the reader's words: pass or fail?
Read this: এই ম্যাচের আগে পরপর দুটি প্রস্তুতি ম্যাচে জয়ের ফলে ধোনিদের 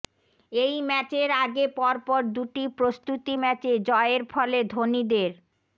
pass